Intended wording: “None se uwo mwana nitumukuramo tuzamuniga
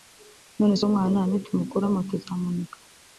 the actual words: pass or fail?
pass